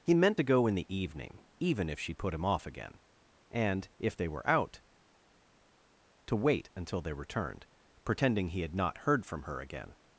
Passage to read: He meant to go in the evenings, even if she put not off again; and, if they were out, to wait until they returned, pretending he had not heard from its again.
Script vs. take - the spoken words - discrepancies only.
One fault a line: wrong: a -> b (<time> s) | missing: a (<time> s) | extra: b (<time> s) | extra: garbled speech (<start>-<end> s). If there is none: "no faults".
wrong: evenings -> evening (0.9 s)
wrong: not -> him (2.3 s)
wrong: its -> her (9.4 s)